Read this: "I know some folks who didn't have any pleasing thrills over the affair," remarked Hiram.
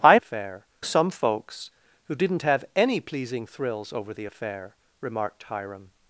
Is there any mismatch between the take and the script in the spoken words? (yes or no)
yes